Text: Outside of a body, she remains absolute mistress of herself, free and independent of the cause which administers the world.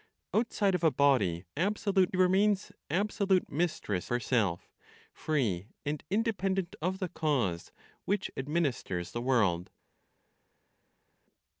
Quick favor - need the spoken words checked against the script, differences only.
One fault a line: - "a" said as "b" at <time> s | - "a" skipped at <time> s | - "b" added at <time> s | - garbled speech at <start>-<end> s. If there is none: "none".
- "she" said as "absolute" at 1.6 s
- "of" skipped at 4.1 s